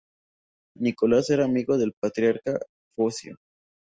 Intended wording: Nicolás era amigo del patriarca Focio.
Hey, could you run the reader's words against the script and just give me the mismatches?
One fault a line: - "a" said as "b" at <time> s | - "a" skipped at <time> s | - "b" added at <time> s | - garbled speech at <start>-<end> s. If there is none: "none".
none